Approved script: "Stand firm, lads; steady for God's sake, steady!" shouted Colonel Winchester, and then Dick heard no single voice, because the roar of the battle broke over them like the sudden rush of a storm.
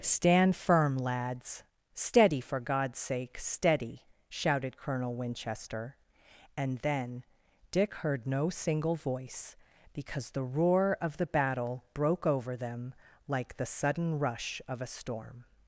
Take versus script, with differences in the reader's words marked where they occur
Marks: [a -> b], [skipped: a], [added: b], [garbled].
"Stand firm, lads; steady for God's sake, steady!" shouted Colonel Winchester, and then Dick heard no single voice, because the roar of the battle broke over them like the sudden rush of a storm.